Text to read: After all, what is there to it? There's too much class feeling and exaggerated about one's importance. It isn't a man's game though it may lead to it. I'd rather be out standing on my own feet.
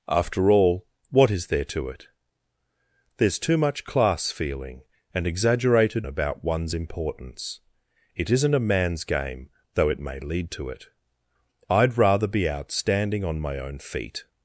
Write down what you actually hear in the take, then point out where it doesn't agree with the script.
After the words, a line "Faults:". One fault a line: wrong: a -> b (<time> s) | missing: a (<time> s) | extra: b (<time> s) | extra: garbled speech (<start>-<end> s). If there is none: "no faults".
After all, what is there to it? There's too much class feeling and exaggerated about one's importance. It isn't a man's game though it may lead to it. I'd rather be out standing on my own feet.
Faults:
no faults